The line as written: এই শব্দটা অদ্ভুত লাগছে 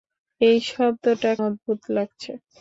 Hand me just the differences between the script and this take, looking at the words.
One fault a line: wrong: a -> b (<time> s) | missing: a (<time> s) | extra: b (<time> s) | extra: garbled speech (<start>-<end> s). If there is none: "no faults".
no faults